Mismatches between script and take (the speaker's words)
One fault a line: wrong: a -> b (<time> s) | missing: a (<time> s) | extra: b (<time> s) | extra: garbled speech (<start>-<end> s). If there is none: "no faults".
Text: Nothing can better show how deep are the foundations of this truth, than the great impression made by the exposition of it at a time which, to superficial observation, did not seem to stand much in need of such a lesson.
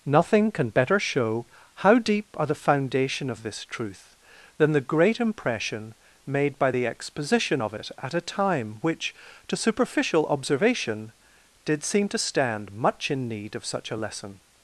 wrong: foundations -> foundation (2.5 s)
missing: not (11.8 s)